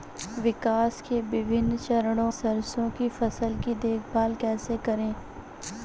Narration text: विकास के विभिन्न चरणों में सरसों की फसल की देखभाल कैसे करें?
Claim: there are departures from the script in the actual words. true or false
true